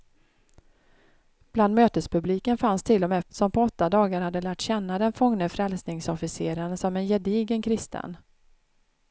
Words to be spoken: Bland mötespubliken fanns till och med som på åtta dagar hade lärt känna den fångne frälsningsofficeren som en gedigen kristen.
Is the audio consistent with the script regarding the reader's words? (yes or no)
yes